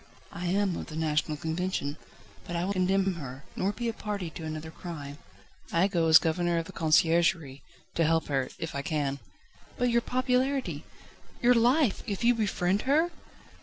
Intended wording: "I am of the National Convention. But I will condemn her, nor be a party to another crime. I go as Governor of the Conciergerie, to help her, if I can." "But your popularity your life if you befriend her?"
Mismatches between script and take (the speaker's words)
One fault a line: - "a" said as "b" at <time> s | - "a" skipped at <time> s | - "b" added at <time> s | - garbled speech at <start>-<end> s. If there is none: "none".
none